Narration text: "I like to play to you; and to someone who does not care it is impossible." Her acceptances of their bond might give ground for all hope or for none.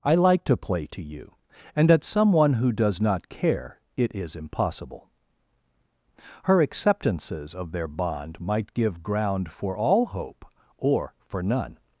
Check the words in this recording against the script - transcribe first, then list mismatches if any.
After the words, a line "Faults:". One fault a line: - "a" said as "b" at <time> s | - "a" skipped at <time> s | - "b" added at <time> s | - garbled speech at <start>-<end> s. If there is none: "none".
"I like to play to you; and at someone who does not care it is impossible." Her acceptances of their bond might give ground for all hope or for none.
Faults:
- "to" said as "at" at 1.9 s